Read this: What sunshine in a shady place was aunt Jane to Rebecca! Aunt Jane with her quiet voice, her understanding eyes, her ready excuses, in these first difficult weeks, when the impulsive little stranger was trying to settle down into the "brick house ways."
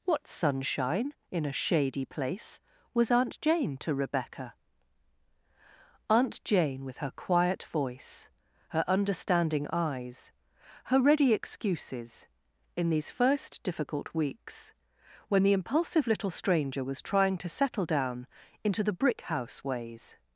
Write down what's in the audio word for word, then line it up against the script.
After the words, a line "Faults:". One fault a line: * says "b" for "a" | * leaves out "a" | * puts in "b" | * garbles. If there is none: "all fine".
What sunshine in a shady place was aunt Jane to Rebecca! Aunt Jane with her quiet voice, her understanding eyes, her ready excuses, in these first difficult weeks, when the impulsive little stranger was trying to settle down into the "brick house ways."
Faults:
all fine